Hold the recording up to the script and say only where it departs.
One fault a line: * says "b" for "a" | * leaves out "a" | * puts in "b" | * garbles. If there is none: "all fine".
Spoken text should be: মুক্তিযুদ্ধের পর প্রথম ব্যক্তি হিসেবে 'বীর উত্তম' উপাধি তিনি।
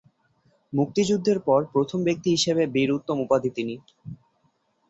all fine